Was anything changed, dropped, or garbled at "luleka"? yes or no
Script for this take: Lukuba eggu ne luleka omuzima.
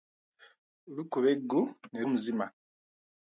yes